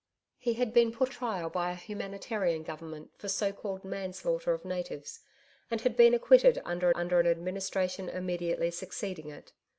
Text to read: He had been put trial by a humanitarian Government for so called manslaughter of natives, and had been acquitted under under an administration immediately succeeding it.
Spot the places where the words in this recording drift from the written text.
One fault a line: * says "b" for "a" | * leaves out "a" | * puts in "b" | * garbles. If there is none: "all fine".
all fine